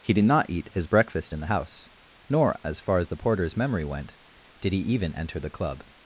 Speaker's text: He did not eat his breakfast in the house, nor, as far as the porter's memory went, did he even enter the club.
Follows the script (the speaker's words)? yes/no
yes